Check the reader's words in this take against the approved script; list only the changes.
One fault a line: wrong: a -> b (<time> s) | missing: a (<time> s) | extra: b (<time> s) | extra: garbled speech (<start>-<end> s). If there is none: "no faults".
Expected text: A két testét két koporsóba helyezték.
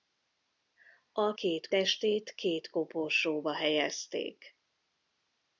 no faults